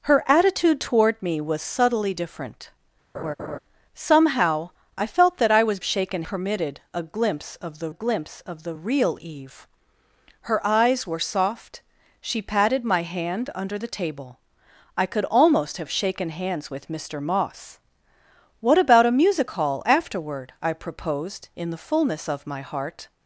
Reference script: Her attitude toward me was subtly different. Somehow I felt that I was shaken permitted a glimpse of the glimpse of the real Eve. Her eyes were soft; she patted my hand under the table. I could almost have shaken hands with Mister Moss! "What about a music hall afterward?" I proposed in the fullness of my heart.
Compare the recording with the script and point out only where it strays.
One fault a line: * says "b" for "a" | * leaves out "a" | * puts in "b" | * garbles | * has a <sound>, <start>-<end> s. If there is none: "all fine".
* has a laugh, 3.1-3.6 s